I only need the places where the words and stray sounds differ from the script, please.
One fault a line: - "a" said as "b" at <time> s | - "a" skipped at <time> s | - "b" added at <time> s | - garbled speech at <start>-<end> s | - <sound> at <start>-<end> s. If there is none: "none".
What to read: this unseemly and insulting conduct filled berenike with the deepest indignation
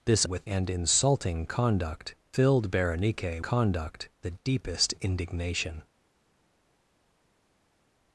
- "unseemly" said as "with" at 0.2 s
- "with" said as "conduct" at 3.4 s